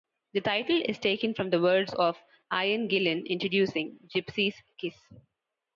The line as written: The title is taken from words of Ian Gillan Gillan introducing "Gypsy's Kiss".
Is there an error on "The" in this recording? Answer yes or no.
no